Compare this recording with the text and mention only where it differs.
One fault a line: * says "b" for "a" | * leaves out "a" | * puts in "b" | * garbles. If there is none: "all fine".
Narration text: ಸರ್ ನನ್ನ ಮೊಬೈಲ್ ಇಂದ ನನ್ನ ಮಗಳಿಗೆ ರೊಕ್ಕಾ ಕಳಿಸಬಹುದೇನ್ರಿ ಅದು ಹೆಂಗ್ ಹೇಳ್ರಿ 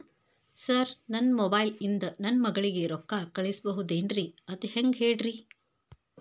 all fine